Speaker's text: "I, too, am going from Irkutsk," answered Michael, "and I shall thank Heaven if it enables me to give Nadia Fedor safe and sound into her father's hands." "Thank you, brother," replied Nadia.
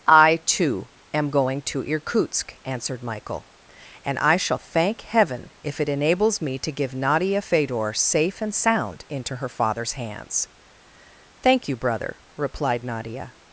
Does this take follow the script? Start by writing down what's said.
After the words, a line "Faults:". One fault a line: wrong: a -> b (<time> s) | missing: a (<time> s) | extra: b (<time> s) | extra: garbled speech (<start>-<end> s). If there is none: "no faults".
"I, too, am going to Irkutsk," answered Michael, "and I shall thank Heaven if it enables me to give Nadia Fedor safe and sound into her father's hands." "Thank you, brother," replied Nadia.
Faults:
wrong: from -> to (1.6 s)